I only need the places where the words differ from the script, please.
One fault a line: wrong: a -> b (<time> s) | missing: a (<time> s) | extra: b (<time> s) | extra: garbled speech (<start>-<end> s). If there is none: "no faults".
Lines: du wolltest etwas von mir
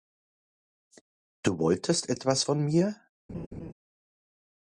no faults